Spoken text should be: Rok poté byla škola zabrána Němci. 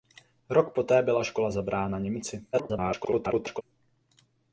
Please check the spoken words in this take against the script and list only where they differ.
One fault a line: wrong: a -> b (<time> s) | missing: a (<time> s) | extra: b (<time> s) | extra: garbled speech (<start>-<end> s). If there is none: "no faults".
extra: garbled speech (2.5-3.6 s)